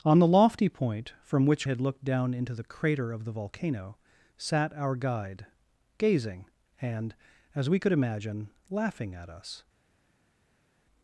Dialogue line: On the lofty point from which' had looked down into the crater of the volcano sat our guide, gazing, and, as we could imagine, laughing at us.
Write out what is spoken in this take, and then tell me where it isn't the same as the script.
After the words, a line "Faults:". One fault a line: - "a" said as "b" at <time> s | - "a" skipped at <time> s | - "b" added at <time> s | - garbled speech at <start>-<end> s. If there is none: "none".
On the lofty point from which' had looked down into the crater of the volcano sat our guide, gazing, and, as we could imagine, laughing at us.
Faults:
none